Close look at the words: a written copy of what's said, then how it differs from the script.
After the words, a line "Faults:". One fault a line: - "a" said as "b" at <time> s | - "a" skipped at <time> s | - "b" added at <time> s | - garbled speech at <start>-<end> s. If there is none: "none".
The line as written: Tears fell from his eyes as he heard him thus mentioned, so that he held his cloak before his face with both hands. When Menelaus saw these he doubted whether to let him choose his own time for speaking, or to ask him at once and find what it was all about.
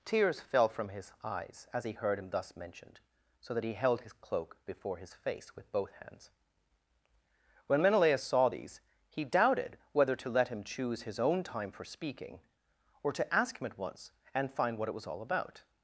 Tears fell from his eyes as he heard him thus mentioned, so that he held his cloak before his face with both hands. When Menelaus saw these he doubted whether to let him choose his own time for speaking, or to ask him at once and find what it was all about.
Faults:
none